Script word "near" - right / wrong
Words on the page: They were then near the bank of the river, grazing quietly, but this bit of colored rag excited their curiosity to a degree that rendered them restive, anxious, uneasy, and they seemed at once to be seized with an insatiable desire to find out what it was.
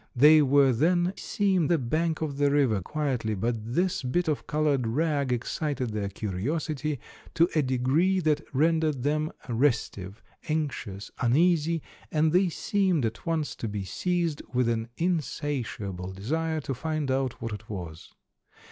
wrong